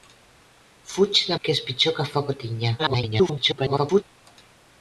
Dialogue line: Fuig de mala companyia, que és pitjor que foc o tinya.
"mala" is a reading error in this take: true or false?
true